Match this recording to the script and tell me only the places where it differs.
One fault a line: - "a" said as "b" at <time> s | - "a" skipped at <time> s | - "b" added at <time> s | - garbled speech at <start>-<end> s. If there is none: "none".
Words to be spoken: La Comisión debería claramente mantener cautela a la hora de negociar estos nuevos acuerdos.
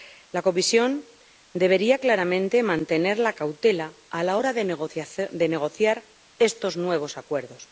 - "la" added at 3.2 s